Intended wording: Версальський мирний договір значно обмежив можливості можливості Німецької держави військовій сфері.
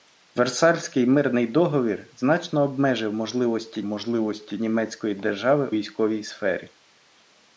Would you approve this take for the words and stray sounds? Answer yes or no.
yes